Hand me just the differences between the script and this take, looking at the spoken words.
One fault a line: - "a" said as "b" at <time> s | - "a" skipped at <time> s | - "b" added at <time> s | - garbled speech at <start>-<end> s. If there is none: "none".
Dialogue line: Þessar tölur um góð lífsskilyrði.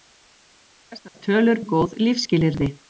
none